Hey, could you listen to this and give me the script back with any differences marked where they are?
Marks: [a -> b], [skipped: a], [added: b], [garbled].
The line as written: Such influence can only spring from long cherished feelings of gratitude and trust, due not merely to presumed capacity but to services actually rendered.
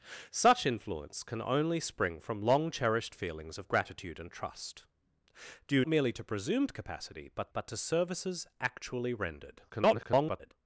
Such influence can only spring from long cherished feelings of gratitude and trust, due [skipped: not] merely to presumed capacity but [added: but] to services actually rendered. [garbled]